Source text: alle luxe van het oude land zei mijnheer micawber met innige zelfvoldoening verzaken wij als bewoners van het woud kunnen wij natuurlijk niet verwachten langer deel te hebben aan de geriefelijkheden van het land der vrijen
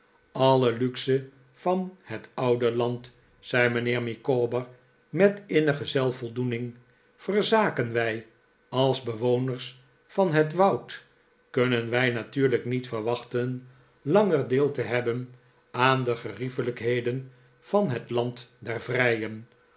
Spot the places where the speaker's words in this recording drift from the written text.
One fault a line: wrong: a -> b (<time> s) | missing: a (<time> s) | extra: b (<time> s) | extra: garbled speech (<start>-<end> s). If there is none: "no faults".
no faults